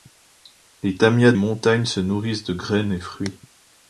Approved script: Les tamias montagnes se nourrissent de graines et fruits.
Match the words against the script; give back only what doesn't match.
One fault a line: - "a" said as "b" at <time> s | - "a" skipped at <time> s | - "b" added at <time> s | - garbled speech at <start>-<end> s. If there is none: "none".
none